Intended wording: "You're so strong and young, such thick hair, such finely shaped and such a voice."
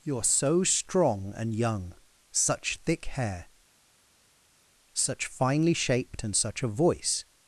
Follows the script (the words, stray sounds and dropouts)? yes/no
yes